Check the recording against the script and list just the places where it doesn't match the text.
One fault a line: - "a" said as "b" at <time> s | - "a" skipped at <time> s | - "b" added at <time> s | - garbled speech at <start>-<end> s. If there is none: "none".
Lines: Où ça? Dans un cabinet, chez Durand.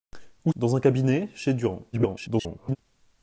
- "ça" skipped at 0.5 s
- garbled speech at 1.9-2.8 s